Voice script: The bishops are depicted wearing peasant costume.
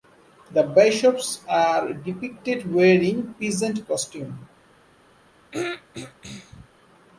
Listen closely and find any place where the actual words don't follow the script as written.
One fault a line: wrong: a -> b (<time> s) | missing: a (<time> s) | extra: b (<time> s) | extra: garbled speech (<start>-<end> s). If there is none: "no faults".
no faults